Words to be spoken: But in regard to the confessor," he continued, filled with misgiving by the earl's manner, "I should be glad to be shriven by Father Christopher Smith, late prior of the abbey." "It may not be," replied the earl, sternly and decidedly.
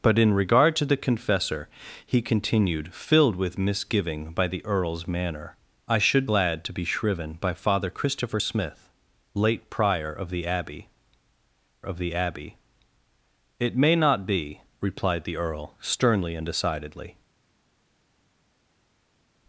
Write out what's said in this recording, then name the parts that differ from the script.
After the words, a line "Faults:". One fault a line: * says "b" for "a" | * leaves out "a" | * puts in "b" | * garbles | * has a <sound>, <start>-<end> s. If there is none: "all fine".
But in regard to the confessor," he continued, filled with misgiving by the earl's manner, "I should glad to be shriven by Father Christopher Smith, late prior of the abbey of the abbey." "It may not be," replied the earl, sternly and decidedly.
Faults:
* leaves out "be"
* puts in "of the abbey"